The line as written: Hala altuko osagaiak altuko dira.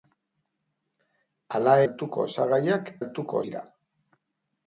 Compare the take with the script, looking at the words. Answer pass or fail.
pass